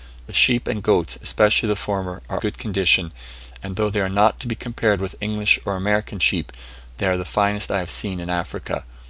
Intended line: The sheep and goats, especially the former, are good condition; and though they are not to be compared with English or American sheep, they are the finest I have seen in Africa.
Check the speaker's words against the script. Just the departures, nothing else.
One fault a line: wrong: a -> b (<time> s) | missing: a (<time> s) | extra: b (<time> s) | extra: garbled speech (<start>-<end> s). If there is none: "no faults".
no faults